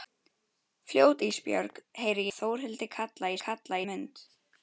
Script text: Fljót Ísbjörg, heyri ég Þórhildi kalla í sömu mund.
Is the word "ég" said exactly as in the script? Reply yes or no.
no